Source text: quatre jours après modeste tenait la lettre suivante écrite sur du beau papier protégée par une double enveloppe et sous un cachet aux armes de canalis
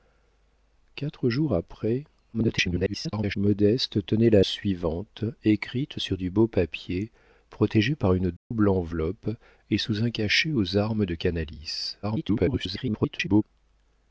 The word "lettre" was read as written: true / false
false